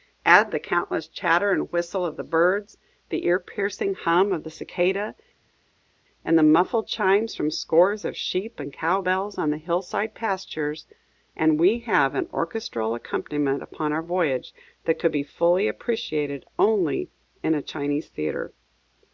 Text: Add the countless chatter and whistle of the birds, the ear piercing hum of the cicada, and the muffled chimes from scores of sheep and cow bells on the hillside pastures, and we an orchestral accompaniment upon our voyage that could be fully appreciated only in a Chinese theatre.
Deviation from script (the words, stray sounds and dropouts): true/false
true